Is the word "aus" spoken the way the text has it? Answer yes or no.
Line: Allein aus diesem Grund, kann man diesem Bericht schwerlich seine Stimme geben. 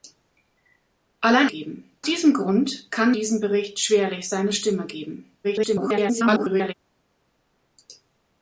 no